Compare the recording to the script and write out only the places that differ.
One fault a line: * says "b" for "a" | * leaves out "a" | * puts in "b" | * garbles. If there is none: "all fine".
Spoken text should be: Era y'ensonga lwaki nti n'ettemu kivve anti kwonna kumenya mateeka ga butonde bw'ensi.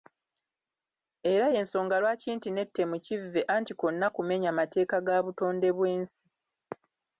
all fine